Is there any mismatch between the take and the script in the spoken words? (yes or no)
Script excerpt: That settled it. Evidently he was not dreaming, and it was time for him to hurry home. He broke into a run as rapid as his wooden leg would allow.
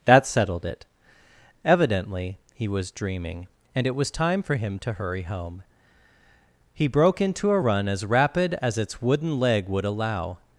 yes